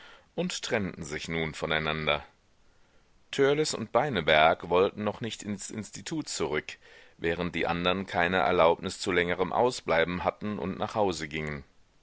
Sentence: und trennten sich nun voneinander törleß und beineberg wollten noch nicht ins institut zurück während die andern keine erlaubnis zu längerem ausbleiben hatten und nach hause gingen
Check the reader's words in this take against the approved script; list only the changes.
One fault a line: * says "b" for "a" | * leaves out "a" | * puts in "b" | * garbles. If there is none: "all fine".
all fine